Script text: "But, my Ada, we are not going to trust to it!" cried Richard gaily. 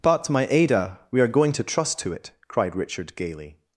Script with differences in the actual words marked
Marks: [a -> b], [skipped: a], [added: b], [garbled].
"But, my Ada, we are [skipped: not] going to trust to it!" cried Richard gaily.